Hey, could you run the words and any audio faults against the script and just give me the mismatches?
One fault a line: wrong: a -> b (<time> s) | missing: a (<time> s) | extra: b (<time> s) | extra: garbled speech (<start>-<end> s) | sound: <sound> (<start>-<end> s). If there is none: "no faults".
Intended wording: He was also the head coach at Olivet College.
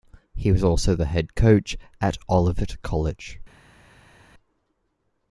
no faults